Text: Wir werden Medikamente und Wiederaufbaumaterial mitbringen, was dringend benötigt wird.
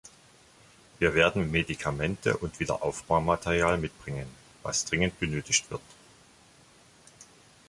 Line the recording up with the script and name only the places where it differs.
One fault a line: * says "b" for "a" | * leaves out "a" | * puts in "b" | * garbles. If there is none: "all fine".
all fine